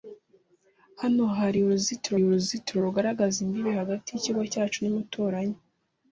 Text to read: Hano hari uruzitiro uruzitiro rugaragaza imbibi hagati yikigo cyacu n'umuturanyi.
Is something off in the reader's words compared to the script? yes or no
no